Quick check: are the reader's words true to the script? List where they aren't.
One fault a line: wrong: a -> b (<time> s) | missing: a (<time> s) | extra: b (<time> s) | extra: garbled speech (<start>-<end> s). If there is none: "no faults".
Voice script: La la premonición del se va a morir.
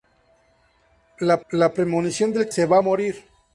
no faults